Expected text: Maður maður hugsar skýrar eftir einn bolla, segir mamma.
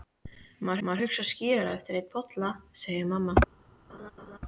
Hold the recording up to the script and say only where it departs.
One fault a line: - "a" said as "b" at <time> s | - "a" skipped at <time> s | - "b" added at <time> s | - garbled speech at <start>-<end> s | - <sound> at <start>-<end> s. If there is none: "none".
- laugh at 3.9-4.4 s